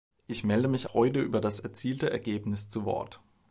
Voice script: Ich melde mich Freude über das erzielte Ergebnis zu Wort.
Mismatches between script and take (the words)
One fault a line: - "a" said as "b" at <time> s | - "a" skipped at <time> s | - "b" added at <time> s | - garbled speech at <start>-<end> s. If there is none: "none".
none